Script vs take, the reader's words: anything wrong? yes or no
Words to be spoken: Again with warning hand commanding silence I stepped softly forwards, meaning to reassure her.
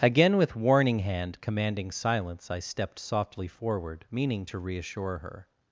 yes